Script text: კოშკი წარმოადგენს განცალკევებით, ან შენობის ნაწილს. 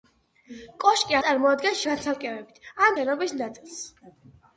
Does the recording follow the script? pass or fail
pass